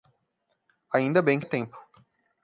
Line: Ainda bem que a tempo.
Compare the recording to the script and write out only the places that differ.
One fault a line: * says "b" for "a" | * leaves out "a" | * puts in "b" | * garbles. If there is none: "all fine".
all fine